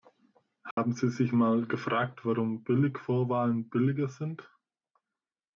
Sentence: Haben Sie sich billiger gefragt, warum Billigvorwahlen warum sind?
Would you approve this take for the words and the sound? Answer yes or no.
no